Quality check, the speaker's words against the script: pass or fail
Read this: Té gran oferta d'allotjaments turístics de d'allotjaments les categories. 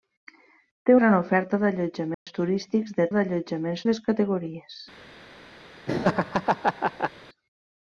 pass